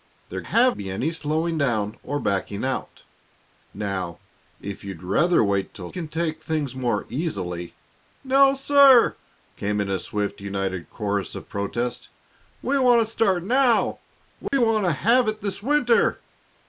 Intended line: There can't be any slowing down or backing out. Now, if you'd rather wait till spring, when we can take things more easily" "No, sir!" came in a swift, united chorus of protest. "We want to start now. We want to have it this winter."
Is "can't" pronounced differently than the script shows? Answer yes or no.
yes